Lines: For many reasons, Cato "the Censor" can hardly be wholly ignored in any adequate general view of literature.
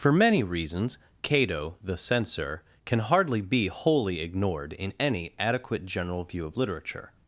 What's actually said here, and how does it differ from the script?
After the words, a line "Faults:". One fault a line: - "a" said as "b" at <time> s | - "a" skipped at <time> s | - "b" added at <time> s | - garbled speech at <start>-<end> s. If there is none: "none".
For many reasons, Cato "the Censor" can hardly be wholly ignored in any adequate general view of literature.
Faults:
none